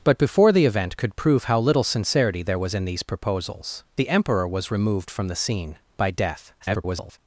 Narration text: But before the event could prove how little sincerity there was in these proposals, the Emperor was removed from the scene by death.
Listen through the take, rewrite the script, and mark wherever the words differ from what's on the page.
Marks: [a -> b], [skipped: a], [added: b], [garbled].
But before the event could prove how little sincerity there was in these proposals, the Emperor was removed from the scene by death. [garbled]